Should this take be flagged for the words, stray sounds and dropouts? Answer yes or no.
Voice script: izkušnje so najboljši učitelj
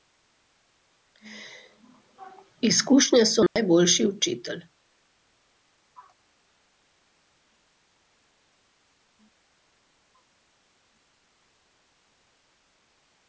yes